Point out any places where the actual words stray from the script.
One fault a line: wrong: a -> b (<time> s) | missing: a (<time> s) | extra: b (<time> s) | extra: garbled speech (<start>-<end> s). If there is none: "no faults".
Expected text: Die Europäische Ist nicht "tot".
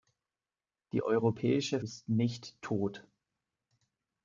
no faults